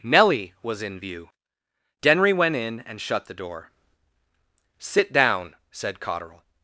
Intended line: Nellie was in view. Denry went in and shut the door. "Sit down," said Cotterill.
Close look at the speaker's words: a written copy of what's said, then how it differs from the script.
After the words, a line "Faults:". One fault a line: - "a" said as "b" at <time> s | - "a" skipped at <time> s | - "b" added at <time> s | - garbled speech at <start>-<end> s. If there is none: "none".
Nellie was in view. Denry went in and shut the door. "Sit down," said Cotterill.
Faults:
none